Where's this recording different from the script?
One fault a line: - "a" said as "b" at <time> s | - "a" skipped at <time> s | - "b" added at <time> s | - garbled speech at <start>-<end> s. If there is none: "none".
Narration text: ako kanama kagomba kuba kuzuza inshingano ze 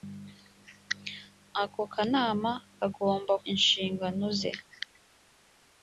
- "kuba kuzuza" skipped at 3.3 s